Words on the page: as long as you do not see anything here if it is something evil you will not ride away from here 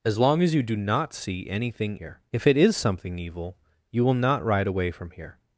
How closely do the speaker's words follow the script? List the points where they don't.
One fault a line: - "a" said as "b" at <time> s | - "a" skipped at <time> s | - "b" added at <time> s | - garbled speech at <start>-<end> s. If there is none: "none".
none